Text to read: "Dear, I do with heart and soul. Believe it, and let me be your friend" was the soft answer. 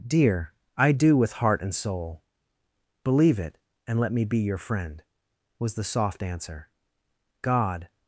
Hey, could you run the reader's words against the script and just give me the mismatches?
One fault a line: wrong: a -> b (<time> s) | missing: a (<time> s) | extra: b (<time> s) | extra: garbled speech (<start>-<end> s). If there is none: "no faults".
extra: God (7.4 s)